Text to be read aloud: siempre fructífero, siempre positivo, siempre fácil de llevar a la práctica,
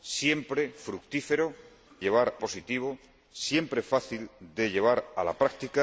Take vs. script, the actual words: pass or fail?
fail